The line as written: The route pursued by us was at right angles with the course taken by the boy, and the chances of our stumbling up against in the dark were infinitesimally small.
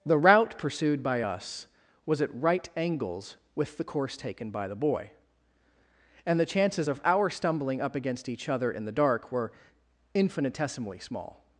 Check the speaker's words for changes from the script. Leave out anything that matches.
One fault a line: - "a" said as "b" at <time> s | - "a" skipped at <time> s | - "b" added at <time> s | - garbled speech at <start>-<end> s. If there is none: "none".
- "each other" added at 8.3 s